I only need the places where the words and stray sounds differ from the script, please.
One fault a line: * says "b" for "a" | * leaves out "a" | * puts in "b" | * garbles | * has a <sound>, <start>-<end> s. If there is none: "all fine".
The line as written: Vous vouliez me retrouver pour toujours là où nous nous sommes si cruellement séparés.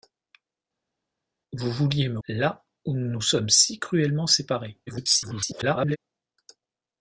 * leaves out "retrouver pour toujours"
* garbles